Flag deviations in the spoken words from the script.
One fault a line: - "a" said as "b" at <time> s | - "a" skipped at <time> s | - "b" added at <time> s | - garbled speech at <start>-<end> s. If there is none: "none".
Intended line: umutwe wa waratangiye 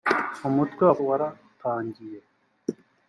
none